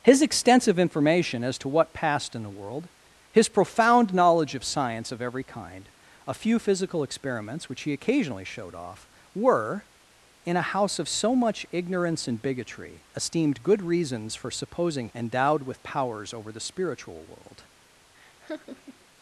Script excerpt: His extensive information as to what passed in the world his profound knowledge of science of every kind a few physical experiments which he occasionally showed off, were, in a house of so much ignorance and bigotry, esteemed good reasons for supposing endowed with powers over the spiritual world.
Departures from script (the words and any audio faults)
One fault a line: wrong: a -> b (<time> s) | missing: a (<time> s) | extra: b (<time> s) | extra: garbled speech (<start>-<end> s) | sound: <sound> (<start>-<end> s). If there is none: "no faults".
sound: laugh (18.1-19.1 s)